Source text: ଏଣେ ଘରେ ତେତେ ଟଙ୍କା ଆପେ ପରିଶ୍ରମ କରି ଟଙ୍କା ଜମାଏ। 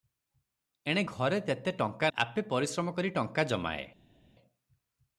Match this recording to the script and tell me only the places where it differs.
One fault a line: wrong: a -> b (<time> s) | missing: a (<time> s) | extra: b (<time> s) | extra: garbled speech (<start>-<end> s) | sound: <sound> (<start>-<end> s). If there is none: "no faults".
no faults